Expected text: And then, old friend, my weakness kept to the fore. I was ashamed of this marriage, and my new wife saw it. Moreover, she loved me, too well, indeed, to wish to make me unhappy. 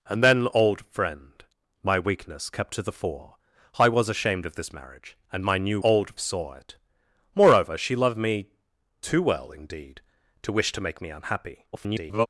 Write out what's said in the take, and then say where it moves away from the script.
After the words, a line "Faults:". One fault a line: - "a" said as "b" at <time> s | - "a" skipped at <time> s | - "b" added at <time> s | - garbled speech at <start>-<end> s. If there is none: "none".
And then, old friend, my weakness kept to the fore. I was ashamed of this marriage, and my new old saw it. Moreover, she loved me, too well, indeed, to wish to make me unhappy. [garbled]
Faults:
- "wife" said as "old" at 5.8 s
- garbled speech at 11.7-12.3 s